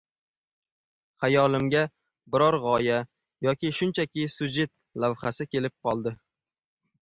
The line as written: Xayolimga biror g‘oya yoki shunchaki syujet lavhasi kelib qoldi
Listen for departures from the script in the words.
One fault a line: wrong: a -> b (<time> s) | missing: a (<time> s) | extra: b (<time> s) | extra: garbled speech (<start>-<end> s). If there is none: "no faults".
no faults